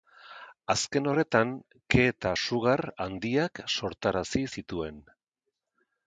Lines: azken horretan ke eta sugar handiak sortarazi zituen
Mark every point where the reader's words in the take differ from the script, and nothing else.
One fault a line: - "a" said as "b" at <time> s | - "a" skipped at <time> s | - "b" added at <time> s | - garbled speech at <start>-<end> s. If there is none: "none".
none